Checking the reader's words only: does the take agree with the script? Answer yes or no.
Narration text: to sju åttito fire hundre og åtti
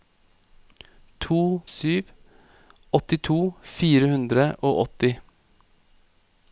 yes